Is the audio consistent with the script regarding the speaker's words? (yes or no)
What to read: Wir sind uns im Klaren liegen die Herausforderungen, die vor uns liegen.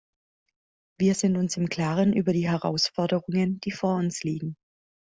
no